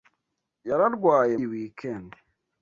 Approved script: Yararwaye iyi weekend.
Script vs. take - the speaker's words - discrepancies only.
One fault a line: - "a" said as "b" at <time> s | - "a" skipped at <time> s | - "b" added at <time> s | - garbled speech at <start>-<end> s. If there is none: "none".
none